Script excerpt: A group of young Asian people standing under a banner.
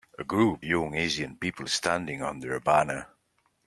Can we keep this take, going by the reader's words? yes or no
no